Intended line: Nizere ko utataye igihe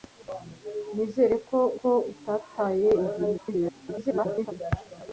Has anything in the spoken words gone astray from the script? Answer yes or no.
yes